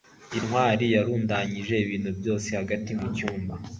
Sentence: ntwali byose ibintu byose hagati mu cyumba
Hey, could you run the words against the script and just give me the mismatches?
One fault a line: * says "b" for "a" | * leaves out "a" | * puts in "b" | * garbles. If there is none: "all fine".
* says "yarundanyije" for "byose"